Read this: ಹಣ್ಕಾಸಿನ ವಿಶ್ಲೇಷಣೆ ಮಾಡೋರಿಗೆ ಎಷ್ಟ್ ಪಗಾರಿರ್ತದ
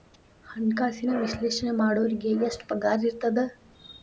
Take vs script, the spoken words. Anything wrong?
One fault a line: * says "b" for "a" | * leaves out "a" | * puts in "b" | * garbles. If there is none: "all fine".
all fine